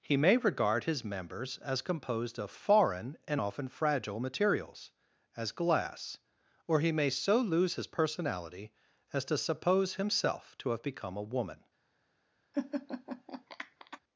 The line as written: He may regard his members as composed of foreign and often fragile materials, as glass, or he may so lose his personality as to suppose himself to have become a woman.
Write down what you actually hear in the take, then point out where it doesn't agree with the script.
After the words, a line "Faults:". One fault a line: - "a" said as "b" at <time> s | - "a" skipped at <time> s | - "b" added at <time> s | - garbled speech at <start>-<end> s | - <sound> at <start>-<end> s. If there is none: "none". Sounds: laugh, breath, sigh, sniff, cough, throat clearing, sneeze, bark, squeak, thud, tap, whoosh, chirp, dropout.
He may regard his members as composed of foreign and often fragile materials, as glass, or he may so lose his personality as to suppose himself to have become a woman.
Faults:
- laugh at 12.5-14.0 s